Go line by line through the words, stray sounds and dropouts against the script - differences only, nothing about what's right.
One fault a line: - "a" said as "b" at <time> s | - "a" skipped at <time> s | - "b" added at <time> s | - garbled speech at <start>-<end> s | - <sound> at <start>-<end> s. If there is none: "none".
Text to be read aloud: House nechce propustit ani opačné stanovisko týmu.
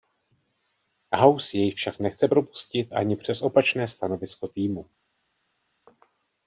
- "jej však" added at 1.6 s
- "přes" added at 3.2 s